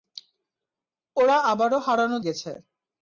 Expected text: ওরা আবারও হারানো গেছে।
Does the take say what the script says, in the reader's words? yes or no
yes